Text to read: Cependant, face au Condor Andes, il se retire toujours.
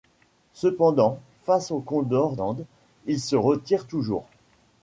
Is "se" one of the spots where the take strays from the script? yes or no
no